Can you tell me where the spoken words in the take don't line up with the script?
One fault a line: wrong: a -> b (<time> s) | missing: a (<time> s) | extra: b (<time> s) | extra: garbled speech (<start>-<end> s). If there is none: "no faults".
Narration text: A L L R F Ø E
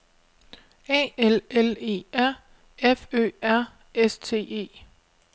extra: E (1.8 s)
extra: R S T (3.4 s)